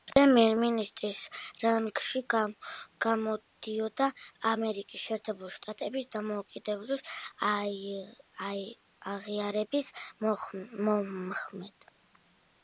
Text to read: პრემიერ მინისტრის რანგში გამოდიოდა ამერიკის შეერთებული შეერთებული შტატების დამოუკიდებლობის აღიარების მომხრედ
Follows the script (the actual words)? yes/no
no